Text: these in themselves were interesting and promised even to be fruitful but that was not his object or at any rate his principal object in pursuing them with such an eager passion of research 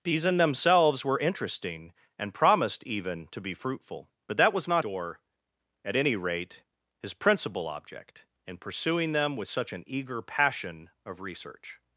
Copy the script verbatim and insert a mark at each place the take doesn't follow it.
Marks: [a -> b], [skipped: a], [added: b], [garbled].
these in themselves were interesting and promised even to be fruitful but that was not [skipped: his object] or at any rate his principal object in pursuing them with such an eager passion of research